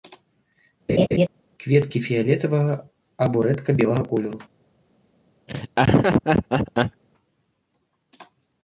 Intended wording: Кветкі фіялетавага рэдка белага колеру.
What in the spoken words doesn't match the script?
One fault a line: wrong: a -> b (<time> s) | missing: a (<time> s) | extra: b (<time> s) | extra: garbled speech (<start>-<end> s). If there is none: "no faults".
extra: або (3.3 s)